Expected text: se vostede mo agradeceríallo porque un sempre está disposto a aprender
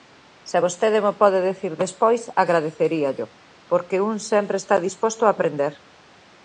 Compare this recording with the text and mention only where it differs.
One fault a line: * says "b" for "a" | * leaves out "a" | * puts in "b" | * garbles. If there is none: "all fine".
* puts in "pode dicir despois"